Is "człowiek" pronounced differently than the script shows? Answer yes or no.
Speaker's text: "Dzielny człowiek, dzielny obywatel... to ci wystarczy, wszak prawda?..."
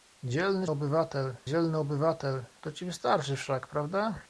yes